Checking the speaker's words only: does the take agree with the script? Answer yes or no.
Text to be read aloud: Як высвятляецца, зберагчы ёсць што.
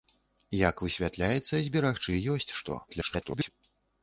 no